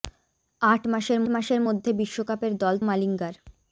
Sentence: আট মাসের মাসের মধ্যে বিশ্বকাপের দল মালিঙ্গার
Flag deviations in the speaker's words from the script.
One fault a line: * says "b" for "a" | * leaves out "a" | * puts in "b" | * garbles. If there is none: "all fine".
all fine